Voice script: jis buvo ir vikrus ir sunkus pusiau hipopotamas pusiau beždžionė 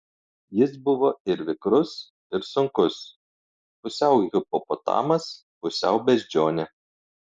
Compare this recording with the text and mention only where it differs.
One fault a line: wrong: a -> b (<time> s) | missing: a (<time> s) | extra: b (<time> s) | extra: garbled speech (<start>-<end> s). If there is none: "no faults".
no faults